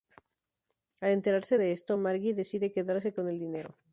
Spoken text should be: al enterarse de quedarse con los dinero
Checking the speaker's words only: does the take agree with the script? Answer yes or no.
no